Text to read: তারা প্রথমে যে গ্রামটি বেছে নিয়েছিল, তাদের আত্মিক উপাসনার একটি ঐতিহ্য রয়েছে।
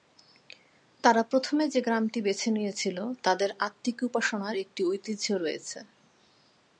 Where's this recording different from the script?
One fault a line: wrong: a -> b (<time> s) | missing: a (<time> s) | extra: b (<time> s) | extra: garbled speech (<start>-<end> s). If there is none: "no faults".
no faults